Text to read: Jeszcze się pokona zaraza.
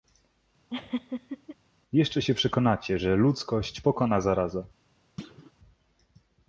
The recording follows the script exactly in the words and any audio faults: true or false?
false